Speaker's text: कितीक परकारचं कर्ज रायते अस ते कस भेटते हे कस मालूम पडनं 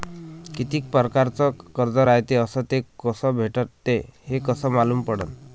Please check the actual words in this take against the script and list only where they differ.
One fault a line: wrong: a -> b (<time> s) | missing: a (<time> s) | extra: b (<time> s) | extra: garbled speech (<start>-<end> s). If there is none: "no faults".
no faults